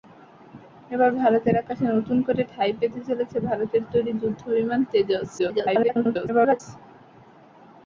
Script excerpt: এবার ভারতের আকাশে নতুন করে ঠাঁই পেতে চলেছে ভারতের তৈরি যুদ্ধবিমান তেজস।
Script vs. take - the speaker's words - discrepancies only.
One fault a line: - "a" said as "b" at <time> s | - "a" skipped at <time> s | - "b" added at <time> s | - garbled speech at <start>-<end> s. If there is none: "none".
- garbled speech at 5.4-6.6 s